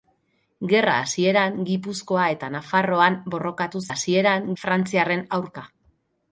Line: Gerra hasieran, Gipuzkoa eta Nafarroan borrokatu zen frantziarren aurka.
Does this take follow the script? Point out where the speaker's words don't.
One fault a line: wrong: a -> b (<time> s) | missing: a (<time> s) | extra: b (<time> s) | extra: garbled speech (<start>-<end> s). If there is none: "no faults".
wrong: zen -> hasieran (3.9 s)